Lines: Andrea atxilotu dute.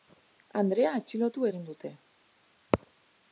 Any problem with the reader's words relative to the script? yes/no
yes